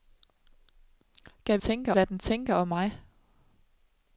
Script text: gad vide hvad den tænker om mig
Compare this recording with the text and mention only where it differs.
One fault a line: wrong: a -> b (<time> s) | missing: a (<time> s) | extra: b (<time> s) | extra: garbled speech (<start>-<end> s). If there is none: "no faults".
wrong: vide -> tænker (1.6 s)